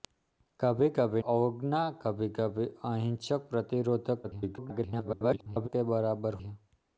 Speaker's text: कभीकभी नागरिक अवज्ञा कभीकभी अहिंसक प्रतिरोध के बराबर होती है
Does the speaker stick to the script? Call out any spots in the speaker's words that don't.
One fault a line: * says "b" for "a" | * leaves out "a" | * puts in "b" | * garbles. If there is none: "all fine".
* leaves out "नागरिक"
* garbles
* leaves out "होती"